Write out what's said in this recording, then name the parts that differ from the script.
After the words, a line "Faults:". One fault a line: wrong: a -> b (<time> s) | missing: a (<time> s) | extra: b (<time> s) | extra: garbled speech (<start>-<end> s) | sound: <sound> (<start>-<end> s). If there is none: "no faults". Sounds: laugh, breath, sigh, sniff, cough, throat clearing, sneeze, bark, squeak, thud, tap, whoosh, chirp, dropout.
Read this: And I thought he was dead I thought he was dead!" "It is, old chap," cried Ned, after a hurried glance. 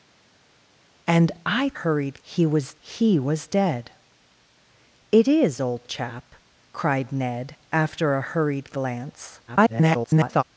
And I hurried he was he was dead!" "It is, old chap," cried Ned, after a hurried glance. [garbled]
Faults:
wrong: thought -> hurried (1.7 s)
missing: dead I thought (2.7 s)
extra: garbled speech (9.5-10.4 s)